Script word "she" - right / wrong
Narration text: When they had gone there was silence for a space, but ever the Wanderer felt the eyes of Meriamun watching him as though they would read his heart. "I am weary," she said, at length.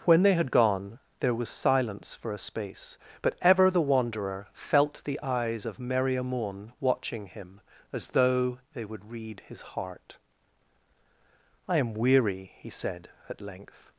wrong